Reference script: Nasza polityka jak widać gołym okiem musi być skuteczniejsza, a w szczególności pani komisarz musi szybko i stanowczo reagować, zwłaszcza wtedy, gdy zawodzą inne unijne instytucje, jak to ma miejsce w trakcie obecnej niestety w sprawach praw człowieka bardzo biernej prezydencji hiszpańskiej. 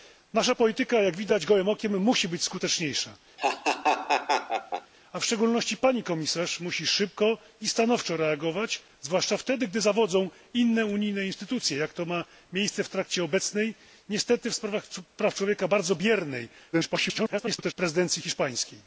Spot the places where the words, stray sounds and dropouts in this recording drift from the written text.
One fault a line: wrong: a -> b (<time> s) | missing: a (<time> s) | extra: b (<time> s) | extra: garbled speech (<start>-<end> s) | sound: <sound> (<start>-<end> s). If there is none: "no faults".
sound: laugh (3.4-4.9 s)
extra: garbled speech (16.7-17.7 s)